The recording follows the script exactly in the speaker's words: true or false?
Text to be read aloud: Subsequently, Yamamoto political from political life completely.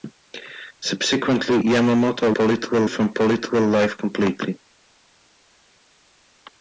true